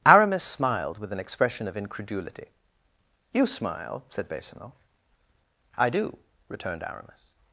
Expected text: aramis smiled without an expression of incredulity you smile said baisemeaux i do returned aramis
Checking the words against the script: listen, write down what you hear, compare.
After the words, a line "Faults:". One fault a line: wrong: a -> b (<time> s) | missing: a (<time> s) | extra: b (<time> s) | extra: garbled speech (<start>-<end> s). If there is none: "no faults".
aramis smiled with an expression of incredulity you smile said baisemeaux i do returned aramis
Faults:
wrong: without -> with (1.0 s)